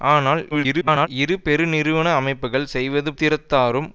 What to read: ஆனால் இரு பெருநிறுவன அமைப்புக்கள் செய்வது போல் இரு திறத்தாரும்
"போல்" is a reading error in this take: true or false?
true